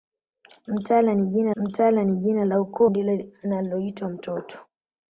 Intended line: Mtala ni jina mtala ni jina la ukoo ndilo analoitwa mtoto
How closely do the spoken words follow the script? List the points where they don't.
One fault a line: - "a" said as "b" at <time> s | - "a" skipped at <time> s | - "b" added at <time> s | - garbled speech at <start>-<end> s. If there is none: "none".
none